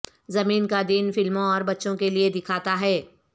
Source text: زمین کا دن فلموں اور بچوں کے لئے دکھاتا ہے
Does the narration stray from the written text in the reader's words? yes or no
no